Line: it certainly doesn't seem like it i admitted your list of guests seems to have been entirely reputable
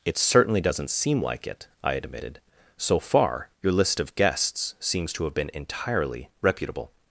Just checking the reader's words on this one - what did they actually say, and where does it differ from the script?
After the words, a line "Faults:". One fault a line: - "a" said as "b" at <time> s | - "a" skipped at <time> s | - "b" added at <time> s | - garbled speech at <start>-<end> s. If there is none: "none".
it certainly doesn't seem like it i admitted so far your list of guests seems to have been entirely reputable
Faults:
- "so far" added at 2.8 s